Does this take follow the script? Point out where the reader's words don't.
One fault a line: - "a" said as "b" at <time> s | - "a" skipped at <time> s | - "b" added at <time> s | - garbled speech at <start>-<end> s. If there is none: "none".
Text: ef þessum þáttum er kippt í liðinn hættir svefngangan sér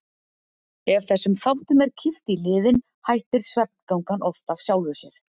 - "oft af sjálfu" added at 4.3 s